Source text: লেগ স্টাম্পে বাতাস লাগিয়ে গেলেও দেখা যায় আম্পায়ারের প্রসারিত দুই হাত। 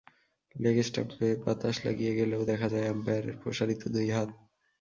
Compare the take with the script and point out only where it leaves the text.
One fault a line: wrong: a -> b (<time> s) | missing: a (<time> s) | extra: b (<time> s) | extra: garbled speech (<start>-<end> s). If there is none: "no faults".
no faults